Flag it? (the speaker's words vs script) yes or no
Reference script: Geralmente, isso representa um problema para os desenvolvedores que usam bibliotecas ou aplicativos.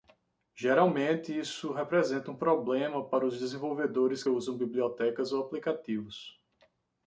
yes